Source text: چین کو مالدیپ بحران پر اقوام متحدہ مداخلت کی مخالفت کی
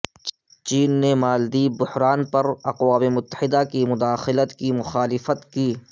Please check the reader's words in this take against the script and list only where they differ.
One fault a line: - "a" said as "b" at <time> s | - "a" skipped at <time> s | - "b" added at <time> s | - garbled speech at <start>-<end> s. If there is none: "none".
- "کو" said as "نے" at 1.0 s
- "کی" added at 3.7 s